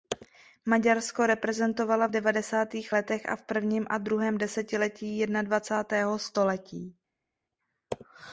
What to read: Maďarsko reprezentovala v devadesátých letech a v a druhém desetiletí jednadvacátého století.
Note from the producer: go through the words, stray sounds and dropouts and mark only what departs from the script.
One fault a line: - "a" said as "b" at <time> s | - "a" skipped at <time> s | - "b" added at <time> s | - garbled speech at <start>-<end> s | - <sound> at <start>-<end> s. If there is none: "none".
- "prvním" added at 3.4 s